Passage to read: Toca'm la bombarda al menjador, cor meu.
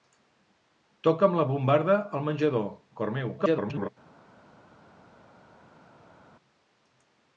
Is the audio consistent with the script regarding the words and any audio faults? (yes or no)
no